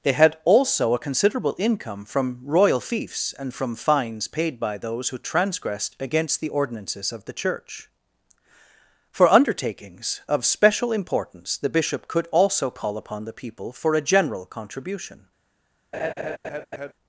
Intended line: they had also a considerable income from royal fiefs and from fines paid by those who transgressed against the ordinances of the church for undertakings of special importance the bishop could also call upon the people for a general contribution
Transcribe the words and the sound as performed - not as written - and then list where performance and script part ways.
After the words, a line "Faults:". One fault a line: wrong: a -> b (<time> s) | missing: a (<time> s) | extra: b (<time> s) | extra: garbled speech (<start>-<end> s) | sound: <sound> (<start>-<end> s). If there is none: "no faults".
they had also a considerable income from royal fiefs and from fines paid by those who transgressed against the ordinances of the church for undertakings of special importance the bishop could also call upon the people for a general contribution
Faults:
sound: laugh (15.9-16.9 s)